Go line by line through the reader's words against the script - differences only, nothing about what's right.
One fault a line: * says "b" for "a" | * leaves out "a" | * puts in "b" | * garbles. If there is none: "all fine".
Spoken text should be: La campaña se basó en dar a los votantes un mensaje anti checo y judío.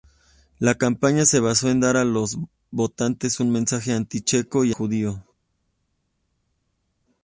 all fine